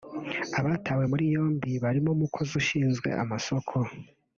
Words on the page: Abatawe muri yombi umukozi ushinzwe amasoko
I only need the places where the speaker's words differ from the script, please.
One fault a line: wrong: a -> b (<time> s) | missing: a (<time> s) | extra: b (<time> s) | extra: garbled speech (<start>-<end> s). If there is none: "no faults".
extra: barimo (1.8 s)